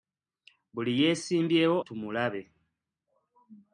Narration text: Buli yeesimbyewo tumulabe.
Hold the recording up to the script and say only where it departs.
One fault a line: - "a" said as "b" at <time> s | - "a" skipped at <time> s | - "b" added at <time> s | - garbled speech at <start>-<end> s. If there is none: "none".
none